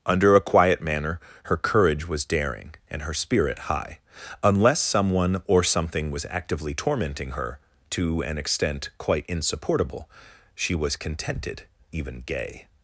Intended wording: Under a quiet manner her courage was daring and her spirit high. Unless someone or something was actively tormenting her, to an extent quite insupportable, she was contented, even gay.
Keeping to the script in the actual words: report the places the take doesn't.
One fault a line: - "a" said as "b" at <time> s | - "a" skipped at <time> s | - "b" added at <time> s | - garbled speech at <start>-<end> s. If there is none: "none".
none